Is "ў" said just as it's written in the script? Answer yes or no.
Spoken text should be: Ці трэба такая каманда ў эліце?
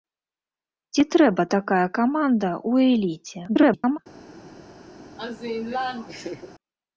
yes